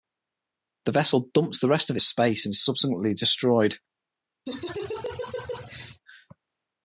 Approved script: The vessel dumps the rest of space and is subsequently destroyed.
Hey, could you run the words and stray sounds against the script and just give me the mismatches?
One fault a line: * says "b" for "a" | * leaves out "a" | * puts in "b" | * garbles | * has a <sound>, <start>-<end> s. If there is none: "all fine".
* has a laugh, 4.5-6.0 s